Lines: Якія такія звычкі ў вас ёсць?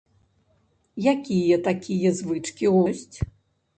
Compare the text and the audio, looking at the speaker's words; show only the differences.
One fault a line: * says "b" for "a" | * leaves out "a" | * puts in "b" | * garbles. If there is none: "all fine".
* leaves out "вас"